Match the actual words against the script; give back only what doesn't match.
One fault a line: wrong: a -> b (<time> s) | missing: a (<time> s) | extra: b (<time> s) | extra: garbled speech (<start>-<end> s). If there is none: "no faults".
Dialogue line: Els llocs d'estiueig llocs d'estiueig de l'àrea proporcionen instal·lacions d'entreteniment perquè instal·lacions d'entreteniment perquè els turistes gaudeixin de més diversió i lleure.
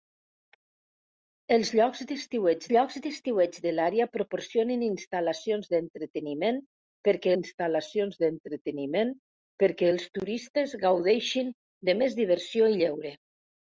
no faults